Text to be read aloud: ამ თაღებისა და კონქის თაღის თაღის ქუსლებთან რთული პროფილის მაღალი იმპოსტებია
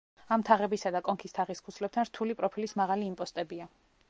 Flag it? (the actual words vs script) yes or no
yes